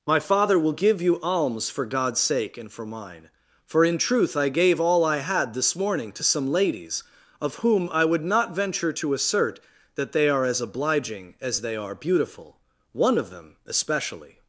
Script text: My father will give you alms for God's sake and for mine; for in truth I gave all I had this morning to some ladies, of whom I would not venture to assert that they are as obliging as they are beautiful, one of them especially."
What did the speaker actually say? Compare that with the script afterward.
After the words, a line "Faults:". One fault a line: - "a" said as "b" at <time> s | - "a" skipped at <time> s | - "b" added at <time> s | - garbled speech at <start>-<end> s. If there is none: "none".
My father will give you alms for God's sake and for mine; for in truth I gave all I had this morning to some ladies, of whom I would not venture to assert that they are as obliging as they are beautiful, one of them especially."
Faults:
none